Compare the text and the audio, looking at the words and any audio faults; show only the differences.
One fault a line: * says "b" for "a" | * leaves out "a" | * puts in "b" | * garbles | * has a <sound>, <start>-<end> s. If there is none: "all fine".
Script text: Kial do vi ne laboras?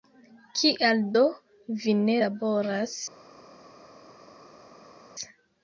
all fine